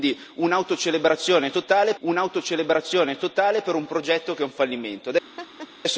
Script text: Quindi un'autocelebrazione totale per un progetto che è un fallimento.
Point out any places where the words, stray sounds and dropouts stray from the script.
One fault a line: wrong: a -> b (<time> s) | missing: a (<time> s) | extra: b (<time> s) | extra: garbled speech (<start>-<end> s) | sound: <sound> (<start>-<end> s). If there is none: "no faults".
extra: un'autocelebrazione totale (2.0 s)
sound: laugh (5.4-5.7 s)